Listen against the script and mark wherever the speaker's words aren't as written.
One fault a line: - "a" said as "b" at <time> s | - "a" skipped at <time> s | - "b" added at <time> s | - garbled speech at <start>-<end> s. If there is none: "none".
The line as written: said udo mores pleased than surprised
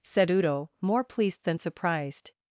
- "mores" said as "more" at 0.8 s